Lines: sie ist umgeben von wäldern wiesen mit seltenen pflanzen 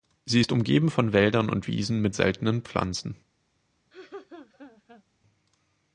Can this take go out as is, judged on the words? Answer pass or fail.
fail